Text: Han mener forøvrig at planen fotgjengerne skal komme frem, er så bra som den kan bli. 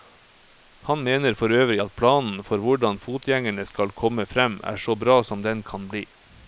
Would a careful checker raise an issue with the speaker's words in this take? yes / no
yes